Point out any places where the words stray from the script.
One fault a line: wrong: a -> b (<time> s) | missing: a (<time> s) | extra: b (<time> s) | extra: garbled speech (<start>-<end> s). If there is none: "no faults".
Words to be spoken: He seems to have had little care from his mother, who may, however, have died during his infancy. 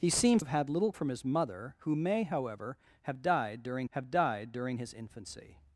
missing: to (0.4 s)
missing: care (0.9 s)
extra: have died during (3.9 s)